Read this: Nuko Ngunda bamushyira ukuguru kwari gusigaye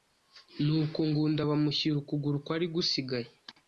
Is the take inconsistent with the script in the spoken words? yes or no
no